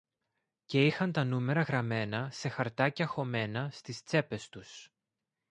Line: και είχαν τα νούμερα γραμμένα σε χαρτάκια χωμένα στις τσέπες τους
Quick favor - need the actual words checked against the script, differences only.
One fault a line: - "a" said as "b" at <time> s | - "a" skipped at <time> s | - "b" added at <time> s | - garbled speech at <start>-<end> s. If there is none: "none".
none